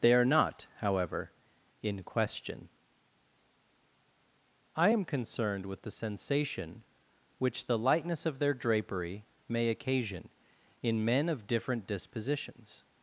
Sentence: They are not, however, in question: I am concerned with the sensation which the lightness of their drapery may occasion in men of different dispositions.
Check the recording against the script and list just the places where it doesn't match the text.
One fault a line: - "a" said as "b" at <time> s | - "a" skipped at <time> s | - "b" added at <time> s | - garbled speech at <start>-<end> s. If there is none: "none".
none